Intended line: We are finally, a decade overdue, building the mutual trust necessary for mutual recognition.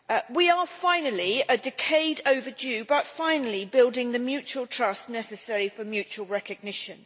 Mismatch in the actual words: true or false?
true